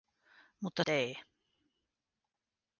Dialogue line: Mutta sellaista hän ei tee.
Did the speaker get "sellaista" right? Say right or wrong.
wrong